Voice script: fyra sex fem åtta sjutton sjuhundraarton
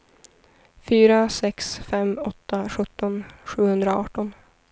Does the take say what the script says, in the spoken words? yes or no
yes